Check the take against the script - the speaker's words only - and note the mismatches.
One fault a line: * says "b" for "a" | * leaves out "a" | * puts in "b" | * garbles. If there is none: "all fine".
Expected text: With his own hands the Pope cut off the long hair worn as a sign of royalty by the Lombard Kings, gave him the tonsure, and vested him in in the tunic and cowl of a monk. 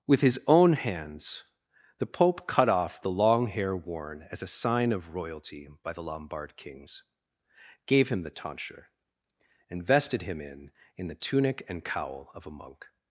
all fine